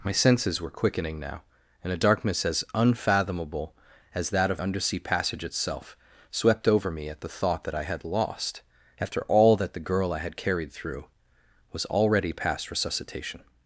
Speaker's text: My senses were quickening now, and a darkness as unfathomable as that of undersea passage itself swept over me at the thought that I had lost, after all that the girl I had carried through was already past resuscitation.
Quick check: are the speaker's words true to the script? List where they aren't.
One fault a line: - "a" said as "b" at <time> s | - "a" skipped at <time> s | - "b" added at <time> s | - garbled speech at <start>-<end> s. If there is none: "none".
none